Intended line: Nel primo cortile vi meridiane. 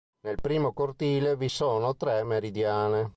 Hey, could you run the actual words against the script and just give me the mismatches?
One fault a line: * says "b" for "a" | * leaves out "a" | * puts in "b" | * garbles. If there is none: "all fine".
* puts in "sono tre"